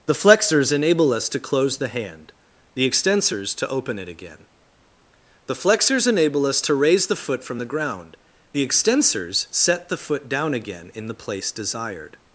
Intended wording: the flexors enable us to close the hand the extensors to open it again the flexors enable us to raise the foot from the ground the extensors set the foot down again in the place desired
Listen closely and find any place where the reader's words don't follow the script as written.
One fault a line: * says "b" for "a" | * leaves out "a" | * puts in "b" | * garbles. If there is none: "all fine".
all fine